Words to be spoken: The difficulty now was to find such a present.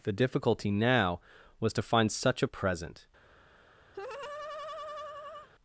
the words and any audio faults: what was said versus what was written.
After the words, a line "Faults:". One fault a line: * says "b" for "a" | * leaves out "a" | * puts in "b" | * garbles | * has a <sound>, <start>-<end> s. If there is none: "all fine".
The difficulty now was to find such a present.
Faults:
* has a laugh, 3.9-5.5 s